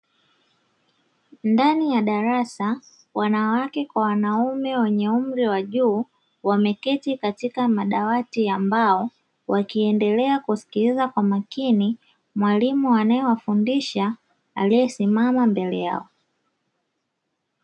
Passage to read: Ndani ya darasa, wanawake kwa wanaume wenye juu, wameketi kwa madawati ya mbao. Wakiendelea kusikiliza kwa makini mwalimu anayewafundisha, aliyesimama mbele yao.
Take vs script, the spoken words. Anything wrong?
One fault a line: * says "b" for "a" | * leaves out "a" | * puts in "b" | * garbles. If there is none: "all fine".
* puts in "umri wa"
* says "katika" for "kwa"